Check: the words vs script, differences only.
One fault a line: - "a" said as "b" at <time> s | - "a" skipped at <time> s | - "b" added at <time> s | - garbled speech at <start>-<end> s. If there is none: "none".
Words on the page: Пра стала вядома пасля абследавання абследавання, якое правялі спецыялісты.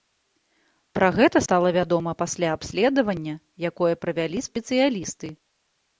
- "гэта" added at 1.2 s
- "абследавання" skipped at 3.3 s